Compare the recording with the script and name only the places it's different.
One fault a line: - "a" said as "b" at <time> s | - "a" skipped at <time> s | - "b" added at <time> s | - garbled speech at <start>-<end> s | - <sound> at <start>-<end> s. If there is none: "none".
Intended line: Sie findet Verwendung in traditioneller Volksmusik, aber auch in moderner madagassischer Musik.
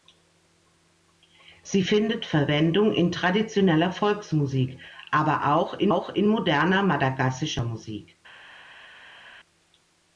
- "auch in" added at 5.9 s